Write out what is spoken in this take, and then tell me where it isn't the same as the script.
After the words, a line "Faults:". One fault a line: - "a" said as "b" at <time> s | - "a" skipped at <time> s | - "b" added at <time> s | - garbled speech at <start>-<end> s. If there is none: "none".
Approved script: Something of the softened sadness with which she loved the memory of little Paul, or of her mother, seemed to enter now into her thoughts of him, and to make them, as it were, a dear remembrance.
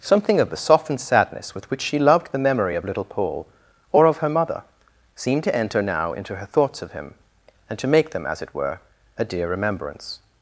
Something of the softened sadness with which she loved the memory of little Paul, or of her mother, seemed to enter now into her thoughts of him, and to make them, as it were, a dear remembrance.
Faults:
none